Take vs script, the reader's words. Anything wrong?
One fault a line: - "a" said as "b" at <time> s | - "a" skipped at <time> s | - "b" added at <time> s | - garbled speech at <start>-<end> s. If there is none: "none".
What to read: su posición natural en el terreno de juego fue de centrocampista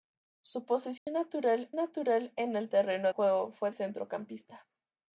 - "natural" added at 1.8 s
- "de" skipped at 3.1 s
- "de" skipped at 3.7 s